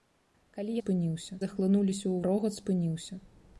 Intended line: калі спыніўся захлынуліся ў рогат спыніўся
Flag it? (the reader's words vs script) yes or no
no